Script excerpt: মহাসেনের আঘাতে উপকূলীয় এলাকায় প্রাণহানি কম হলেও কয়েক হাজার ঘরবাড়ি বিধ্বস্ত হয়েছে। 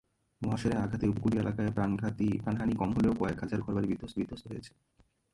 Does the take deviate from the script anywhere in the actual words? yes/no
yes